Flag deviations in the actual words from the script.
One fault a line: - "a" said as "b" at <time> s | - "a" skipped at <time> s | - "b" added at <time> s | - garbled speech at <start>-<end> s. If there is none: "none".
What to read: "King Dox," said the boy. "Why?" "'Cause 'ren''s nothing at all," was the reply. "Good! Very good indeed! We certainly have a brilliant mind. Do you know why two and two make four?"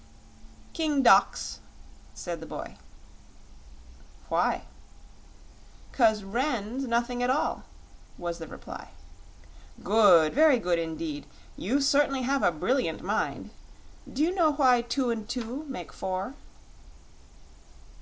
- "We" said as "You" at 11.6 s